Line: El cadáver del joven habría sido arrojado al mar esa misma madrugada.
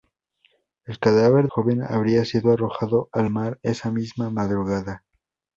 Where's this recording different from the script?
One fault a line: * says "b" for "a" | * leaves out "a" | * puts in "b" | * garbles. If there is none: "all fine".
* leaves out "del"